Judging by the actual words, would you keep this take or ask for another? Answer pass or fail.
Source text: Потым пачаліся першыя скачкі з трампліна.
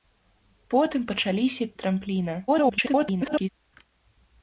fail